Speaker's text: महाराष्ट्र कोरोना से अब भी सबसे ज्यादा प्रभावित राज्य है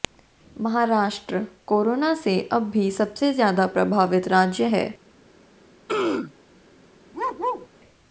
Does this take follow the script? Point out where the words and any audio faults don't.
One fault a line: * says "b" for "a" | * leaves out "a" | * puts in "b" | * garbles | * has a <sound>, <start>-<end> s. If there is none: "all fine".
* has a throat clearing, 5.9-6.3 s
* has a bark, 7.1-7.7 s